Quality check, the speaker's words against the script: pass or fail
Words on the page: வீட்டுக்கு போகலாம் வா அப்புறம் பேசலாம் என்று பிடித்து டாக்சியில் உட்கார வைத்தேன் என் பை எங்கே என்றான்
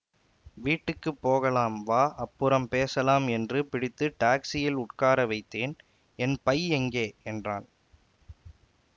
pass